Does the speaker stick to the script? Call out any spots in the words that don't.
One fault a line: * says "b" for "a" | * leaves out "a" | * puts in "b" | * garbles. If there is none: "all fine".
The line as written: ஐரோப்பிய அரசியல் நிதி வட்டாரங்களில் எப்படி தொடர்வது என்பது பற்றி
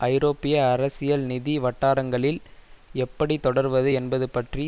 all fine